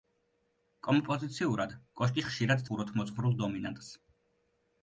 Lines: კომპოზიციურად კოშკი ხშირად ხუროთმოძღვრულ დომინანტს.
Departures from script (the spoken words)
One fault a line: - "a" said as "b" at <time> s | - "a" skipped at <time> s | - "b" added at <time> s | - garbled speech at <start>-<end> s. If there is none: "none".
none